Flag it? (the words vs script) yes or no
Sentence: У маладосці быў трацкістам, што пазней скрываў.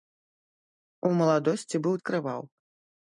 yes